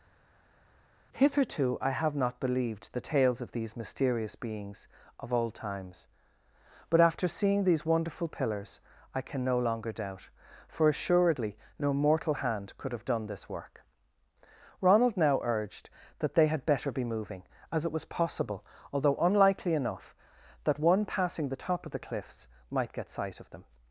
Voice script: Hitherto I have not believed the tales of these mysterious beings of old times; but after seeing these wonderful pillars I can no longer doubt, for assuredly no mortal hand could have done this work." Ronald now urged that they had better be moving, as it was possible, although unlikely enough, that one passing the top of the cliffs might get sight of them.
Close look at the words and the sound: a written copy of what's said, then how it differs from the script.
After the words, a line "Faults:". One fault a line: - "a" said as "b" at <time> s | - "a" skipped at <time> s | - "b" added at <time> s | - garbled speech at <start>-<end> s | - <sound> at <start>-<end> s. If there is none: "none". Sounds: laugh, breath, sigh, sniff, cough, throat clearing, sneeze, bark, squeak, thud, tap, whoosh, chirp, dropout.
Hitherto I have not believed the tales of these mysterious beings of old times; but after seeing these wonderful pillars I can no longer doubt, for assuredly no mortal hand could have done this work." Ronald now urged that they had better be moving, as it was possible, although unlikely enough, that one passing the top of the cliffs might get sight of them.
Faults:
none